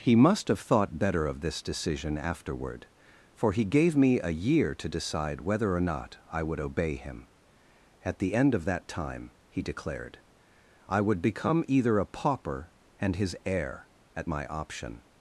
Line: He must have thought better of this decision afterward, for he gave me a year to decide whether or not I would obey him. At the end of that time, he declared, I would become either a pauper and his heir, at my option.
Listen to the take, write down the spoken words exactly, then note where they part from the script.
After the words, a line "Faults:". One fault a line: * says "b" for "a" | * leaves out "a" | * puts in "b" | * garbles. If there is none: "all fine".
He must have thought better of this decision afterward, for he gave me a year to decide whether or not I would obey him. At the end of that time, he declared, I would become either a pauper and his heir, at my option.
Faults:
all fine